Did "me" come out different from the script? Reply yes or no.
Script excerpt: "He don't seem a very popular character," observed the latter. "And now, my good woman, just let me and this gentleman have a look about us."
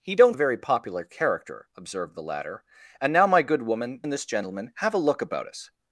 yes